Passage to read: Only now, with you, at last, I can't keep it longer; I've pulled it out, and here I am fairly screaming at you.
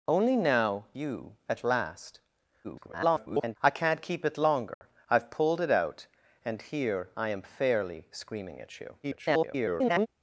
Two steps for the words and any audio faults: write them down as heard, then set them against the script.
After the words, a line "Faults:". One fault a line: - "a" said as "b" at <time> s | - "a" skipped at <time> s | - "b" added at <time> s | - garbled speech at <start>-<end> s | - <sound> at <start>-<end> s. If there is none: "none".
Only now, you, at last, [garbled] I can't keep it longer; I've pulled it out, and here I am fairly screaming at you. [garbled]
Faults:
- "with" skipped at 0.9 s
- garbled speech at 2.6-3.6 s
- dropout at 4.7-4.8 s
- garbled speech at 9.0-10.1 s